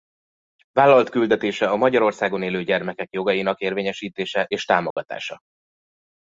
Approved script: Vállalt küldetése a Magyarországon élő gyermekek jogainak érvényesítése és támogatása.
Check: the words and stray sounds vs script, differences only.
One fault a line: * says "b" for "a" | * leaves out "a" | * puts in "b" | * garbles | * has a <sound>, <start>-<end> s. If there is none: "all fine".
* has a dropout, 4.9-5.0 s